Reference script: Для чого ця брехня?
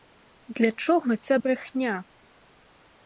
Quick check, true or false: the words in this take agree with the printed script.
true